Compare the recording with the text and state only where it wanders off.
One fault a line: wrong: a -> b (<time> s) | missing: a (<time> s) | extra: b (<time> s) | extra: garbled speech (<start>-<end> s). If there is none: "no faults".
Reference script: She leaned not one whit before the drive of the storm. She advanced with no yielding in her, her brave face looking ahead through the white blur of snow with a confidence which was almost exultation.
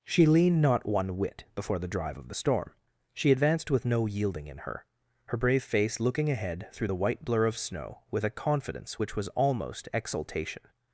no faults